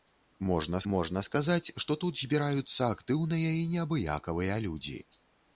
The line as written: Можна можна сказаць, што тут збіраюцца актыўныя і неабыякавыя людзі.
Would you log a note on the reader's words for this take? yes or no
no